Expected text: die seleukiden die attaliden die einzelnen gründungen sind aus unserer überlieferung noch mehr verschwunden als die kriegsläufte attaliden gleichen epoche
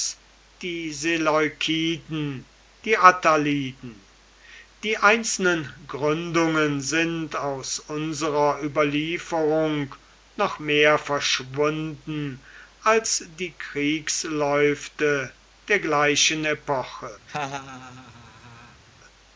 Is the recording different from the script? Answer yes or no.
yes